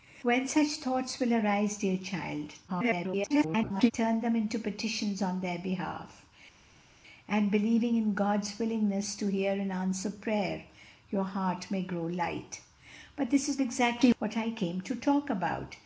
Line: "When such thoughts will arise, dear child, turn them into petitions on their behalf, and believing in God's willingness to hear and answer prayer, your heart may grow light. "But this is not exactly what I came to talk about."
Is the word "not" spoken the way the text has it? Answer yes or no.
no